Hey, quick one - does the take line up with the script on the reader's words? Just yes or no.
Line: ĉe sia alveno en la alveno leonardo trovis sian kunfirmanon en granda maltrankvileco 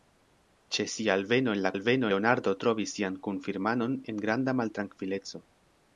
yes